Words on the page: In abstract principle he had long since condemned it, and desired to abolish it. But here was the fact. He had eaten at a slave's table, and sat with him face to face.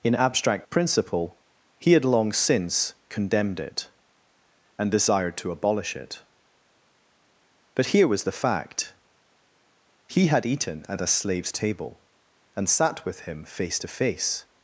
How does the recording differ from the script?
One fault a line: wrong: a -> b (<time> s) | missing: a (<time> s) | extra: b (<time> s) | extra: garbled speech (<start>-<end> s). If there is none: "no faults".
no faults